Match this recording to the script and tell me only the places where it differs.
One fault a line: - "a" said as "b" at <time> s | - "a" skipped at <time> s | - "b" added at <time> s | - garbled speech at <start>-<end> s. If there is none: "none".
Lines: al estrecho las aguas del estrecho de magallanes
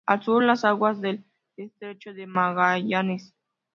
- "estrecho" said as "sur" at 0.2 s